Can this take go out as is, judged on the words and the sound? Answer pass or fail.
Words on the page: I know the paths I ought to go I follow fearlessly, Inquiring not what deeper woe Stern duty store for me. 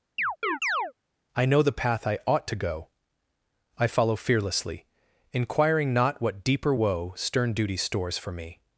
fail